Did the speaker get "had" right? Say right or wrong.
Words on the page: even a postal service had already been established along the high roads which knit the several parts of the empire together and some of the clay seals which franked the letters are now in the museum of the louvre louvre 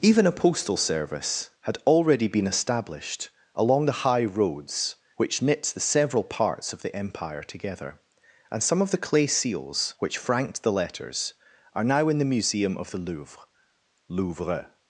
right